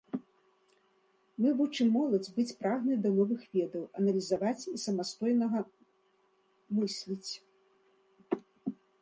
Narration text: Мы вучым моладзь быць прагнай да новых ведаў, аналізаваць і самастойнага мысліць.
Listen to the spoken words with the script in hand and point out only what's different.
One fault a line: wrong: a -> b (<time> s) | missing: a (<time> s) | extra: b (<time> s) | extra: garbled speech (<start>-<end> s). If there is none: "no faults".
no faults